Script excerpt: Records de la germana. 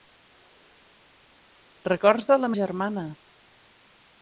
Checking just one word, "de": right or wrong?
right